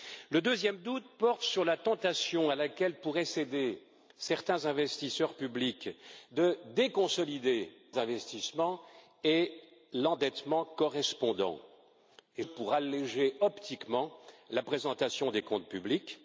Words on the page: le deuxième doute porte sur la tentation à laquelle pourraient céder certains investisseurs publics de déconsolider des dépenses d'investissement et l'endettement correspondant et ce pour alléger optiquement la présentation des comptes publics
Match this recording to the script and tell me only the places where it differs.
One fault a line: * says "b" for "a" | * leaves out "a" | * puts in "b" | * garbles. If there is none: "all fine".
* leaves out "des dépenses"
* leaves out "ce"